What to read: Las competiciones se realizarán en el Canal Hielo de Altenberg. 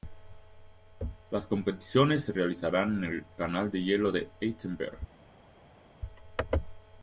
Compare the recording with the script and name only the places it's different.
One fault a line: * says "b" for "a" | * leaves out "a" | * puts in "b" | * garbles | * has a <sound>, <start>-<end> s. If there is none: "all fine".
* puts in "de"